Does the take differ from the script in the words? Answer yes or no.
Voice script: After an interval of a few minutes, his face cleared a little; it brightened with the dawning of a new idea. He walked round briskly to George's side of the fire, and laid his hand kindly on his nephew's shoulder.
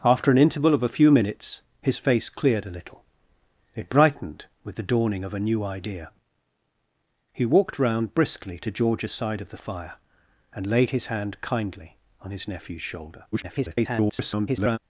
yes